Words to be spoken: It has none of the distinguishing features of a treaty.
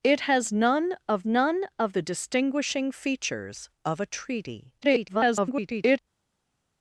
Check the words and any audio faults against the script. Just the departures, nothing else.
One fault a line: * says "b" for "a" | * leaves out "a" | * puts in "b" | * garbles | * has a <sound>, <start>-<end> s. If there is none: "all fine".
* puts in "none of"
* garbles